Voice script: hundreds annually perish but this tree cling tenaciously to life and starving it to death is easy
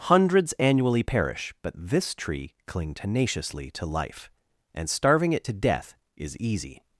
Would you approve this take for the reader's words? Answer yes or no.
yes